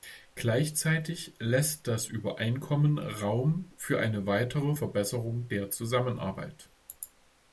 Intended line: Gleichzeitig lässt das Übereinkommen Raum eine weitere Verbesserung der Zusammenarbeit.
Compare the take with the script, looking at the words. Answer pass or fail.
fail